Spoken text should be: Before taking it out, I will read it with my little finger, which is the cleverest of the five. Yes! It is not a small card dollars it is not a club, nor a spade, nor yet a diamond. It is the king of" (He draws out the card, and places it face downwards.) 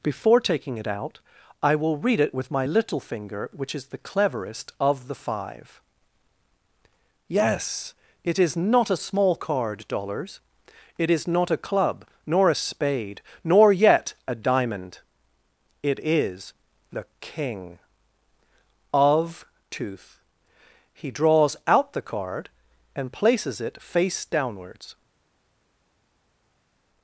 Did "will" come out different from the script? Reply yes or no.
no